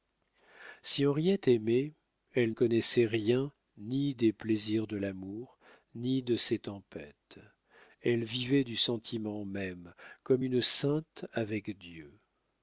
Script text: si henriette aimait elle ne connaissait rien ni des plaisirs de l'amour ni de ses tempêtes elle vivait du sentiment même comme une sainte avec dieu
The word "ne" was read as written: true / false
false